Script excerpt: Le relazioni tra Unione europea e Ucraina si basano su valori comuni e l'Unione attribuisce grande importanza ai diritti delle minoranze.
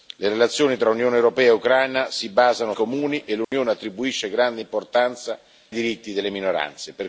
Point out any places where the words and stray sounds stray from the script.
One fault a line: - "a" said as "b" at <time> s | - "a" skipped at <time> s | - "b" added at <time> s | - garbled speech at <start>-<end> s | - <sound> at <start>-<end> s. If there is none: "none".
- "su valori" skipped at 2.7 s
- dropout at 3.4-3.5 s
- "ai" skipped at 5.4 s